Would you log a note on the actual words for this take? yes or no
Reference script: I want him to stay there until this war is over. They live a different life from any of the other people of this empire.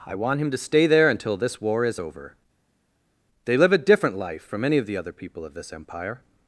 no